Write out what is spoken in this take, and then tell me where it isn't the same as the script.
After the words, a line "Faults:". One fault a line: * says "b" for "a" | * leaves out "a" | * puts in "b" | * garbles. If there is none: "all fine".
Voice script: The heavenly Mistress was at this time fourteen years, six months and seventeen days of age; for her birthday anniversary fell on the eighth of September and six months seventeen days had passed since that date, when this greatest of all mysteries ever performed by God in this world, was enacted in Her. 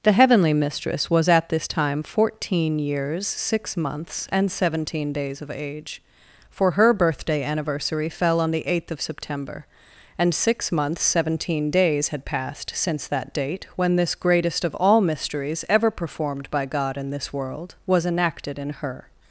The heavenly Mistress was at this time fourteen years, six months and seventeen days of age; for her birthday anniversary fell on the eighth of September and six months seventeen days had passed since that date, when this greatest of all mysteries ever performed by God in this world, was enacted in Her.
Faults:
all fine